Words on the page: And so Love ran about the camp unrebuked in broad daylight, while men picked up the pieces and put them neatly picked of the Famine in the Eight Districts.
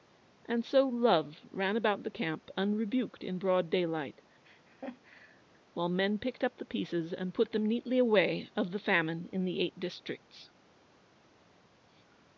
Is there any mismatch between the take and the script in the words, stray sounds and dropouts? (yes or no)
yes